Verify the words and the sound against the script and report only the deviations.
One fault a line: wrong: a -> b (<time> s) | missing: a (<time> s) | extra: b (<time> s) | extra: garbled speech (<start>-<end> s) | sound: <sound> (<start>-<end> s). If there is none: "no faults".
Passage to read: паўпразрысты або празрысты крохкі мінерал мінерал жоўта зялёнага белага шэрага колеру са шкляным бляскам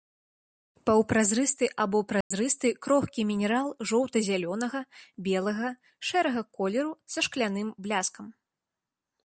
sound: dropout (2.2-2.3 s)
missing: мінерал (3.7 s)